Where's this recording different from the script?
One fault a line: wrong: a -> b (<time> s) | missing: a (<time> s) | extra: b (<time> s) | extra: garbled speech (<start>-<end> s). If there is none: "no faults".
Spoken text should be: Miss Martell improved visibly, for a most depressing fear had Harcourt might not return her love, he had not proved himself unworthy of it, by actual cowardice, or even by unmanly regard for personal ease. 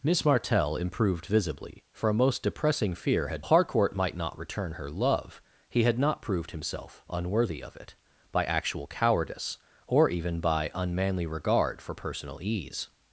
no faults